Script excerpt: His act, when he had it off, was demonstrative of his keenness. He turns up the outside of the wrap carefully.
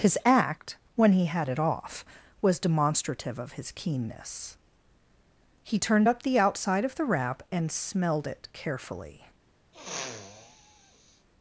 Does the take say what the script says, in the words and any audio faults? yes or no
no